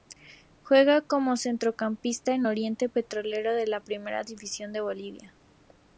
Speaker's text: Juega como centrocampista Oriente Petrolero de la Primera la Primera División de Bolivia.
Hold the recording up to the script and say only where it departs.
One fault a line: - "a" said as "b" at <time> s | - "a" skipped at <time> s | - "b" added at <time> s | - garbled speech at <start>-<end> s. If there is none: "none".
- "en" added at 2.3 s
- "la Primera" skipped at 4.2 s